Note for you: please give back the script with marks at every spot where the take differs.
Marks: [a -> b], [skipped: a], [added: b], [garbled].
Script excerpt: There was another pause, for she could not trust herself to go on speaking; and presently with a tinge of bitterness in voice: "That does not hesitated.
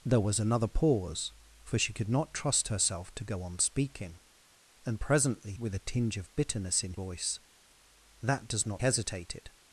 There was another pause, for she could not trust herself to go on speaking; and presently with a tinge of bitterness in voice: "That does not hesitated.